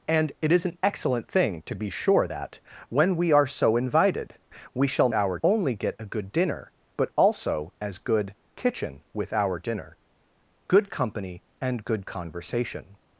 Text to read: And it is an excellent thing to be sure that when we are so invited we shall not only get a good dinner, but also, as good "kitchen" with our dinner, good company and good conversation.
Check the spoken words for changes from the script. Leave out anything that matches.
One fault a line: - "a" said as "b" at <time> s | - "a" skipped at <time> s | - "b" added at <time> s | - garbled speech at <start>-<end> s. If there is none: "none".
- "not" said as "our" at 5.1 s